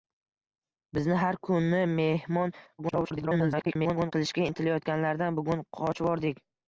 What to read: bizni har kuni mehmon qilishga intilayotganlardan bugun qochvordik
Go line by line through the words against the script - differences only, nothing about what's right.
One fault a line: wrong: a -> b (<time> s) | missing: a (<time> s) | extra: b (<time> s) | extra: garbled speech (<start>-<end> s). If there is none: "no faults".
extra: garbled speech (2.8-4.1 s)